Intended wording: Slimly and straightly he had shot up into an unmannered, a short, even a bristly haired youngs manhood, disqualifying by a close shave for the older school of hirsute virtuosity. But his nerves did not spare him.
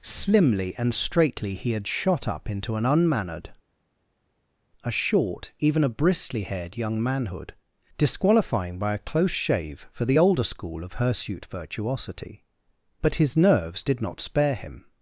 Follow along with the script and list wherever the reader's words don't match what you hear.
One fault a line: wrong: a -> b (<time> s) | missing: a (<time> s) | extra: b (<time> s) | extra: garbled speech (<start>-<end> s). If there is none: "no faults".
wrong: youngs -> young (6.8 s)